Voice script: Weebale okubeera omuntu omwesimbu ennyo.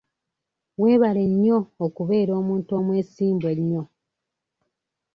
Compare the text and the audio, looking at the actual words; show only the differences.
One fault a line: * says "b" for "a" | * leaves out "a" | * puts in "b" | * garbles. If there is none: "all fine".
* puts in "nnyo"